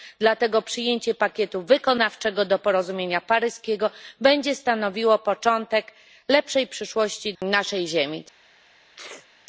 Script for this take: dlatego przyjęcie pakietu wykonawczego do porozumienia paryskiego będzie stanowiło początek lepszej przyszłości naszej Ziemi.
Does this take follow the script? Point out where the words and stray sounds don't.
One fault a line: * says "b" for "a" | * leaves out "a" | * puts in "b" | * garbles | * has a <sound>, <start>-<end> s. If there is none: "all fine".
* has a sneeze, 9.0-9.3 s